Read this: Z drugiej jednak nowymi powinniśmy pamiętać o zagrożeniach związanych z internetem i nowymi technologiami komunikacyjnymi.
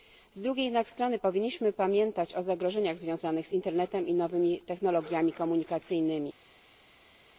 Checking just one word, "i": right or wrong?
right